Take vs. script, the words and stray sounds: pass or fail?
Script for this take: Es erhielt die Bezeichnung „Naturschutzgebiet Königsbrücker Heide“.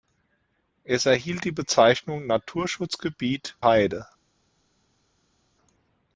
fail